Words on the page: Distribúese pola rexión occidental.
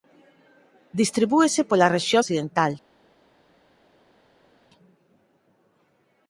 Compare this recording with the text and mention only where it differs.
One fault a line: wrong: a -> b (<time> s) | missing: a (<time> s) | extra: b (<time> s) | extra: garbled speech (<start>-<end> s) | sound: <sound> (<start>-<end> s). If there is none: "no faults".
no faults